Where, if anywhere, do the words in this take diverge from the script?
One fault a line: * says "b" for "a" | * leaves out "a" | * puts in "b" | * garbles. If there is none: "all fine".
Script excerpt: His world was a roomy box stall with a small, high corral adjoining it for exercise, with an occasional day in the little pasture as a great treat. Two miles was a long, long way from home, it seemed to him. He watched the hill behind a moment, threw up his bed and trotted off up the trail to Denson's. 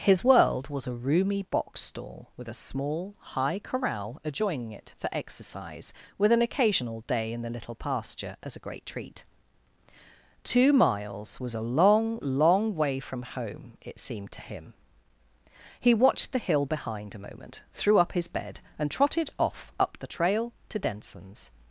all fine